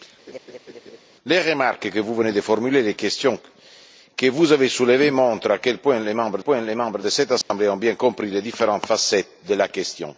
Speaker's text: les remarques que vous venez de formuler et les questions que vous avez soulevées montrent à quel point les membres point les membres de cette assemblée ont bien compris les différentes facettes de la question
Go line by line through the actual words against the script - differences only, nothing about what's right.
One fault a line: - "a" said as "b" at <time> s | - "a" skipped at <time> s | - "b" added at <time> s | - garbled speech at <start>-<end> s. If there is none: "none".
none